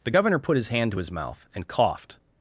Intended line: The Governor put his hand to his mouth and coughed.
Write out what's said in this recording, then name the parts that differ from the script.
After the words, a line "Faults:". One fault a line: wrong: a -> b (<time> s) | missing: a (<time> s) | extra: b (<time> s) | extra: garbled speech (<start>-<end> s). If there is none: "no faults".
The Governor put his hand to his mouth and coughed.
Faults:
no faults